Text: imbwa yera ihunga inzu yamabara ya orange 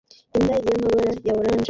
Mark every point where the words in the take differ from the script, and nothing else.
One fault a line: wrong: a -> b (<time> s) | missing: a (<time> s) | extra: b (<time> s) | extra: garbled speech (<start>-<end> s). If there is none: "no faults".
missing: yera ihunga inzu (0.6 s)